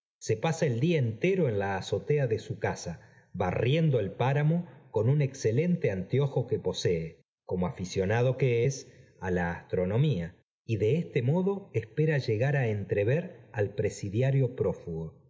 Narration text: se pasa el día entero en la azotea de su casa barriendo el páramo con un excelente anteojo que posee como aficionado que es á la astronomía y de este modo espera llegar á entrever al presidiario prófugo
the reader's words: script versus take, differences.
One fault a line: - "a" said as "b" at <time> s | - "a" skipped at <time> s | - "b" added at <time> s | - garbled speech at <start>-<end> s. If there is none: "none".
none